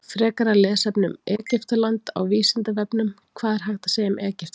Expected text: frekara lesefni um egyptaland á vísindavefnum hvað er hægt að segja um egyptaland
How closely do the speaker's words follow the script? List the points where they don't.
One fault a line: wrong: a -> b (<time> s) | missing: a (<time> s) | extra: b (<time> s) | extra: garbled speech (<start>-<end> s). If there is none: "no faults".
no faults